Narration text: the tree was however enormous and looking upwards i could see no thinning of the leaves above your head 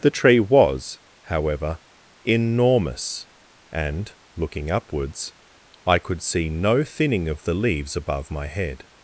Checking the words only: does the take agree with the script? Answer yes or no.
no